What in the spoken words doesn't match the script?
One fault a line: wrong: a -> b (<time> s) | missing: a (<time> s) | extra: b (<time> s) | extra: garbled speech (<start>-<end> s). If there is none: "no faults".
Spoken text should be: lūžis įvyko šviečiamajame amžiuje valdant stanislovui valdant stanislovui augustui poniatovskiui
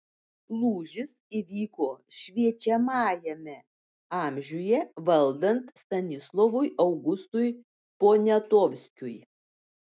missing: valdant stanislovui (6.7 s)